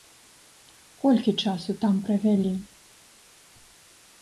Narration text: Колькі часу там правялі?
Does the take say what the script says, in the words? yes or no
yes